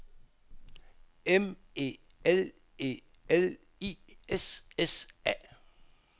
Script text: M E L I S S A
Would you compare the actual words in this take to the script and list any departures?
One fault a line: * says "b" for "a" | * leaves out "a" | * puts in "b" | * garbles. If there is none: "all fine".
* puts in "E L"